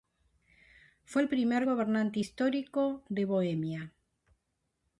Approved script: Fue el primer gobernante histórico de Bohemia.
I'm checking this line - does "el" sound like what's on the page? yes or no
yes